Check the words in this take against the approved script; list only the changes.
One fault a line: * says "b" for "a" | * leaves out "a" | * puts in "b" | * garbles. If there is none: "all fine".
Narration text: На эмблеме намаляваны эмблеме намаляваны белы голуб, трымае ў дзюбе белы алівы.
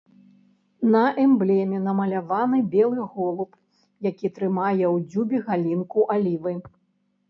* leaves out "эмблеме намаляваны"
* puts in "які"
* says "галінку" for "белы"